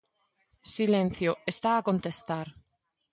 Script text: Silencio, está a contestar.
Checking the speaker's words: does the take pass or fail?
pass